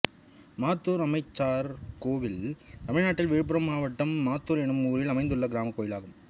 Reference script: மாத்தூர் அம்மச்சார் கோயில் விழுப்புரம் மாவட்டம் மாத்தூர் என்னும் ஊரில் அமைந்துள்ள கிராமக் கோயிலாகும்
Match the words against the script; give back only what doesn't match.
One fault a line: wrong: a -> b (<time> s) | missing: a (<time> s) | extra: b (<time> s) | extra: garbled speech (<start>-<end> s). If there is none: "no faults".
extra: தமிழ்நாட்டில் (2.9 s)